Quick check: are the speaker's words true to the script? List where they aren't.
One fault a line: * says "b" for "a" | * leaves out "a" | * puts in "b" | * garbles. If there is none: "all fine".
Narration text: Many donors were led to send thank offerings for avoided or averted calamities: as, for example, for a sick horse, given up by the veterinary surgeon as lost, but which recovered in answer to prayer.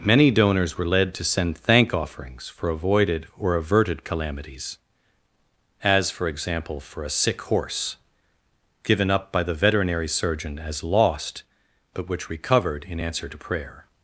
all fine